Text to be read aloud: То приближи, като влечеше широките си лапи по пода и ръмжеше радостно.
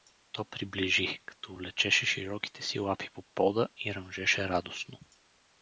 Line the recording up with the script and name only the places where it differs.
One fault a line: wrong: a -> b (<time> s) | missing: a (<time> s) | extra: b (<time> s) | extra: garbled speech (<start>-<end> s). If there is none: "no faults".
no faults